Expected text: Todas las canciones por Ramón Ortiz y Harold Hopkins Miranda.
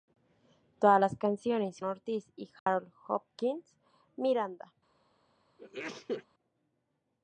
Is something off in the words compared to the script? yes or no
yes